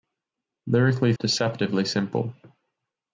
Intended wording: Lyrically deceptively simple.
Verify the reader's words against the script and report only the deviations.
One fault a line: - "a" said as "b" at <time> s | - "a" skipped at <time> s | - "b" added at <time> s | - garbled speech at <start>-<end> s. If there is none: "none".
none